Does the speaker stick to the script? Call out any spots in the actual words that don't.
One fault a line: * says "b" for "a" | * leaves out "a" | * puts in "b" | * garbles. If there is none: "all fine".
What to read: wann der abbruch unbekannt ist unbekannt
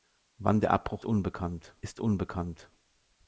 all fine